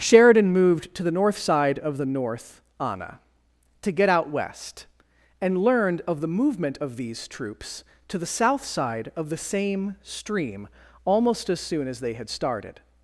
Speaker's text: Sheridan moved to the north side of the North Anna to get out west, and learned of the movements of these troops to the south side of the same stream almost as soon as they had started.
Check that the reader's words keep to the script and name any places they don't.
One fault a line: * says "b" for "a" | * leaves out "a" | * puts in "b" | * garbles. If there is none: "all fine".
* says "movement" for "movements"